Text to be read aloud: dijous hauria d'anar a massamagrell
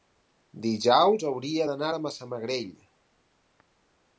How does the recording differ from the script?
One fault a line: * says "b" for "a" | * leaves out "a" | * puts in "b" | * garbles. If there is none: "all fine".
all fine